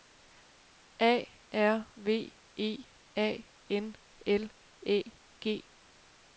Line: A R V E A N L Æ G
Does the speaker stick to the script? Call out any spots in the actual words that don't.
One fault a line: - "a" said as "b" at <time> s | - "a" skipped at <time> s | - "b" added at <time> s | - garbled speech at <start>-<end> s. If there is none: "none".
none